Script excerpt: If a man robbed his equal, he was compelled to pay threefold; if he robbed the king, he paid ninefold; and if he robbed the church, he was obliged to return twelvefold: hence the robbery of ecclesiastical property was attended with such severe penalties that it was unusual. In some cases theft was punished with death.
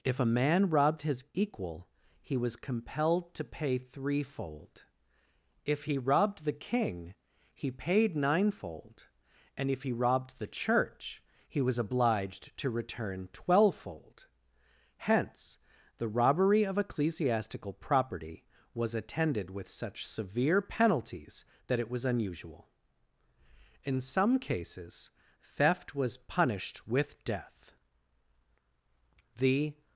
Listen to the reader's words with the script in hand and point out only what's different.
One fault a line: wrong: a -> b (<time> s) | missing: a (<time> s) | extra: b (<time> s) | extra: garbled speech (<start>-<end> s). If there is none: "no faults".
extra: The (29.4 s)